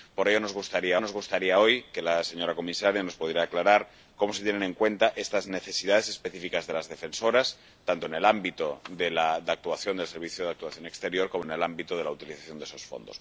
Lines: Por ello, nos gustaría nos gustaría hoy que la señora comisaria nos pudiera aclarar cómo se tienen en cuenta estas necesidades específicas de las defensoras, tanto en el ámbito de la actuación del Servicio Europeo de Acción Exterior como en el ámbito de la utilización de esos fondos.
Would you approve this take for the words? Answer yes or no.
yes